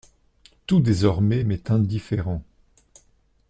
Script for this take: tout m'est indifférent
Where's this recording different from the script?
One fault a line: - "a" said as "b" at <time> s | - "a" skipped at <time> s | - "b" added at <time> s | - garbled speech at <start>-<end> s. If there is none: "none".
- "désormais" added at 0.8 s